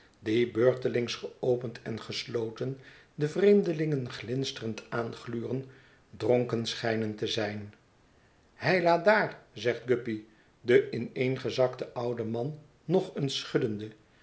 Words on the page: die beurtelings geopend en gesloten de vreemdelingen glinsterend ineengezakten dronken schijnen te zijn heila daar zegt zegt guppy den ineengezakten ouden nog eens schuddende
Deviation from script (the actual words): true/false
true